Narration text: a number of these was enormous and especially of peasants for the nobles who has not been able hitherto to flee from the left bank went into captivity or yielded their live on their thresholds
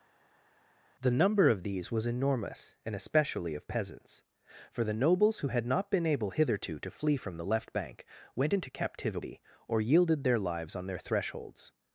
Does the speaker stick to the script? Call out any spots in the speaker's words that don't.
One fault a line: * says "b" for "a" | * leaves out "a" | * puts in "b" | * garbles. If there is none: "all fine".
* says "the" for "a"
* says "had" for "has"
* says "lives" for "live"